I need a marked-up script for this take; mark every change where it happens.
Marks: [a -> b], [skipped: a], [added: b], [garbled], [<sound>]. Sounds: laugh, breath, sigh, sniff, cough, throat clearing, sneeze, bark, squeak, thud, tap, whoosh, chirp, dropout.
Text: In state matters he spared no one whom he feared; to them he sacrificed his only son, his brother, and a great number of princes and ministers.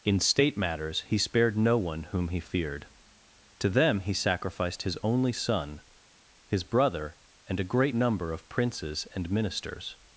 In state matters he spared no one whom he feared; to them he sacrificed his only son, his brother, and a great number of princes and ministers.